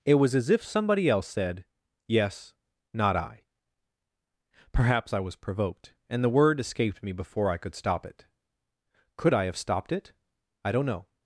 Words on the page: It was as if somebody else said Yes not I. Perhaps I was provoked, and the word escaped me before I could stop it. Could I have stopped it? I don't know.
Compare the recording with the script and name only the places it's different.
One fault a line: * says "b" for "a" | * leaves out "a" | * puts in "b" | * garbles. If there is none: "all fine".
all fine